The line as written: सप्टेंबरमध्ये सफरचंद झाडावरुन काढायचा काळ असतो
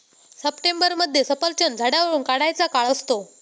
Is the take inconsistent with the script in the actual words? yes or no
no